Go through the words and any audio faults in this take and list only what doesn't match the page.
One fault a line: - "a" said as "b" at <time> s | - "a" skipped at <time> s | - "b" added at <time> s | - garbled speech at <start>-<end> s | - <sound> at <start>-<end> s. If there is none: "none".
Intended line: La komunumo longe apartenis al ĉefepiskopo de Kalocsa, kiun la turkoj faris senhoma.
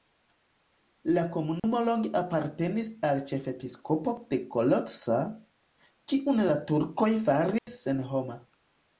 - dropout at 1.6-1.6 s
- dropout at 7.6-7.7 s